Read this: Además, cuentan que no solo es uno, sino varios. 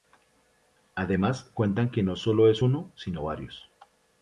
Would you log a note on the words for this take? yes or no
no